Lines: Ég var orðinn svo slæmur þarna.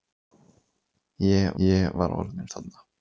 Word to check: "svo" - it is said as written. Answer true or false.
false